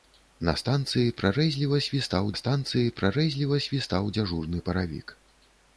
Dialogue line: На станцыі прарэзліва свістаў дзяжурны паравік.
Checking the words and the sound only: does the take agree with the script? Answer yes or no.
no